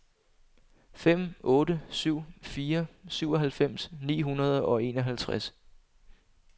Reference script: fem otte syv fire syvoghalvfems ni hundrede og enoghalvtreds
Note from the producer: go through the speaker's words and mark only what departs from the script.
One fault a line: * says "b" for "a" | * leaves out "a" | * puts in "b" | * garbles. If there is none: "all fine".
all fine